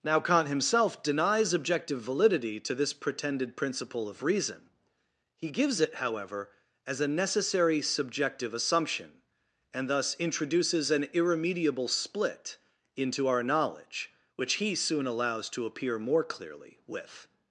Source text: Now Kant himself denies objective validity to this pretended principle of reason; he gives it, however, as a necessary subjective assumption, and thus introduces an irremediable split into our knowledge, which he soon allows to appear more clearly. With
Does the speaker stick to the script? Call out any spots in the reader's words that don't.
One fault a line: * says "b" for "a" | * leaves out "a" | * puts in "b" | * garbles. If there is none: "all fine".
all fine